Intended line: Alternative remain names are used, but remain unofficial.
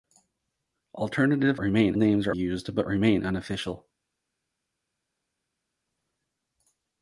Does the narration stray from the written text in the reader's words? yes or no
no